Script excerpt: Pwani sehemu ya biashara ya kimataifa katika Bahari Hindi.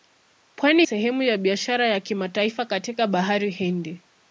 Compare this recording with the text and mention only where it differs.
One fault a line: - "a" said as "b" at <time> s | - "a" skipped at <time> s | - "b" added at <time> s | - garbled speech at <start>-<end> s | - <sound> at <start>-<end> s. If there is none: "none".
none